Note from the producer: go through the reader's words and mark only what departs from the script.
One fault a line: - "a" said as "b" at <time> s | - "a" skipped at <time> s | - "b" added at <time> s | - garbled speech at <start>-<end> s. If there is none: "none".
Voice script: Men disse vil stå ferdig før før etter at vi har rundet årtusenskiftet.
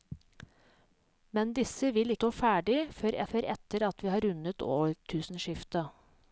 none